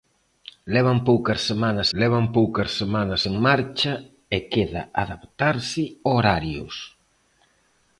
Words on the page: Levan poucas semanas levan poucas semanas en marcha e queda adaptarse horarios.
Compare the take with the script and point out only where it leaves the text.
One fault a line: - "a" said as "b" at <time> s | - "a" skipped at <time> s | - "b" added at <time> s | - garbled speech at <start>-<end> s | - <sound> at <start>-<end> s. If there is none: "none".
none